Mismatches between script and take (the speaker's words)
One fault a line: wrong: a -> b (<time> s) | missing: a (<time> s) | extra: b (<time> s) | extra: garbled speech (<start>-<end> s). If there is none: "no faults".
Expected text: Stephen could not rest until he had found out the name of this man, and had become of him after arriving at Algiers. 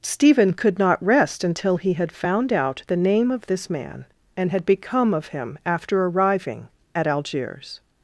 no faults